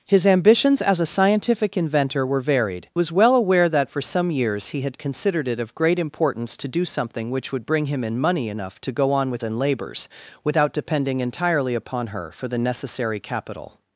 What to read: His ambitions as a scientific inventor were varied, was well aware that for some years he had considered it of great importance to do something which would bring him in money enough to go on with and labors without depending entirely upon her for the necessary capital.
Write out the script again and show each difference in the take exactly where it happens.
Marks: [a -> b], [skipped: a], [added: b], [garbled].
His ambitions as a scientific inventor were varied, was well aware that for some years he had considered it of great importance to do something which would bring him in money enough to go on with and labors without depending entirely upon her for the necessary capital.